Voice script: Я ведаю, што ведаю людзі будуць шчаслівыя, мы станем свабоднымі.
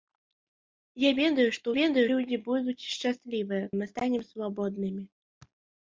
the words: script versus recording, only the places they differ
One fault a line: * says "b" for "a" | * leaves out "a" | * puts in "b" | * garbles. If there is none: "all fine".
all fine